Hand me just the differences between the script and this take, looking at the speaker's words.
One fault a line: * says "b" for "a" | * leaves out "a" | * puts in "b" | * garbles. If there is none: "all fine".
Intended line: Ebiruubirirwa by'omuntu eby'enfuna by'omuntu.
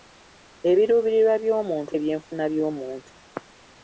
all fine